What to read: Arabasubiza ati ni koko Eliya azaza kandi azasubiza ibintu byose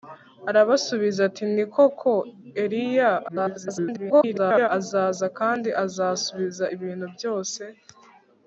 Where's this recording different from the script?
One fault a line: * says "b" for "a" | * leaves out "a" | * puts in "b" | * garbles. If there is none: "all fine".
* garbles